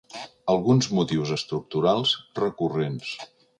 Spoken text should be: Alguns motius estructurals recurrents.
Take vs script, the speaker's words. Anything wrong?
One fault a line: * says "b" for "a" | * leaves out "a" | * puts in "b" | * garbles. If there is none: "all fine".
all fine